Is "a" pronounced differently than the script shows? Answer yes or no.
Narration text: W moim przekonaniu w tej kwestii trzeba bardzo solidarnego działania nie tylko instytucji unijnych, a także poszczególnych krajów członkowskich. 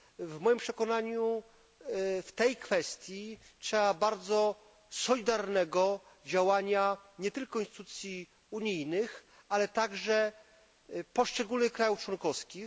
yes